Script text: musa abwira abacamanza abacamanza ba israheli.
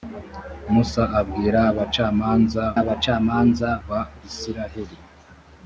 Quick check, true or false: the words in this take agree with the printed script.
true